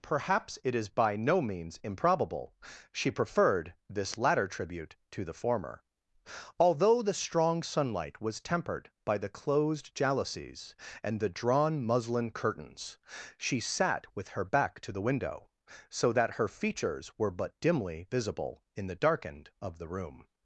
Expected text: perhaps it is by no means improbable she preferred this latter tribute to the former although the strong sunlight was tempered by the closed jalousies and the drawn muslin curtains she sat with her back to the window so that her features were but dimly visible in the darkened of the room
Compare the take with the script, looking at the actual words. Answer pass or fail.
pass